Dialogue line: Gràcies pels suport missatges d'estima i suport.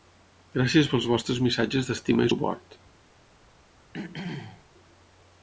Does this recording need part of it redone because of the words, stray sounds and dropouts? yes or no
yes